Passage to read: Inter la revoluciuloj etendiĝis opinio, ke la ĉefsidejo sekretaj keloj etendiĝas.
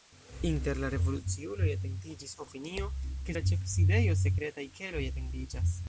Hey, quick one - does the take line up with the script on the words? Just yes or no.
yes